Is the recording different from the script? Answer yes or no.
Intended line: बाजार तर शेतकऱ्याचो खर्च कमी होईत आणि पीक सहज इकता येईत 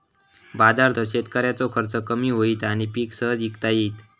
no